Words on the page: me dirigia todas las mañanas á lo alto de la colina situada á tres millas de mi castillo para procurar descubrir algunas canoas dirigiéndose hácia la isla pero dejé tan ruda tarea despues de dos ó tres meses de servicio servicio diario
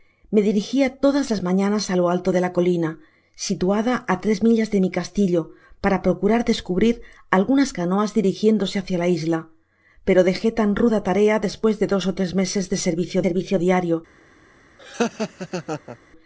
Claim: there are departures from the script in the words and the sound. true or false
true